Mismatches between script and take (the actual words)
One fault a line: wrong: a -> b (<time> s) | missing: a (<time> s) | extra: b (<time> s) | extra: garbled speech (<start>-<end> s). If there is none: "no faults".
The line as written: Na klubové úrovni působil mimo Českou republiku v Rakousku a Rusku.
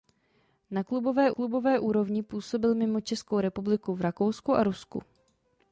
extra: klubové (1.3 s)